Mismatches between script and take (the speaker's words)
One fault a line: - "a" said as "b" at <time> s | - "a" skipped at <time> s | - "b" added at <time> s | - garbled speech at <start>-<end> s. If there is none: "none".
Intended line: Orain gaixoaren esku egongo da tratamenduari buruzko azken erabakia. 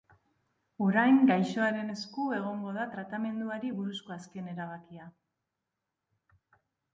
none